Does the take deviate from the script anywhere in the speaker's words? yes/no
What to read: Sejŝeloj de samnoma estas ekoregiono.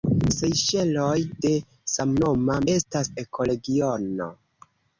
no